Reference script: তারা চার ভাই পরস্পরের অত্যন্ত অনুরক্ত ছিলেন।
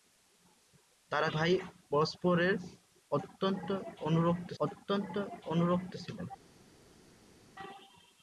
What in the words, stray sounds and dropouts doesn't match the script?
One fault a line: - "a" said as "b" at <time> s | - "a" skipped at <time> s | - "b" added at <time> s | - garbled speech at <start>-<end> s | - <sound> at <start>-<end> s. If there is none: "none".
- "চার" skipped at 1.3 s
- "অত্যন্ত অনুরক্ত" added at 4.6 s